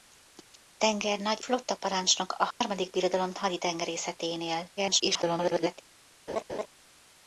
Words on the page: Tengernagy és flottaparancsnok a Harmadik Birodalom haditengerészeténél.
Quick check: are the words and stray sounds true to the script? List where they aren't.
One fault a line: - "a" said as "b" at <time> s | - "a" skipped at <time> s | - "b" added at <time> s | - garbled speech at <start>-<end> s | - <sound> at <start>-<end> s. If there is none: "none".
- "és" skipped at 1.4 s
- dropout at 2.5-2.6 s
- garbled speech at 4.8-5.8 s
- laugh at 6.3-6.7 s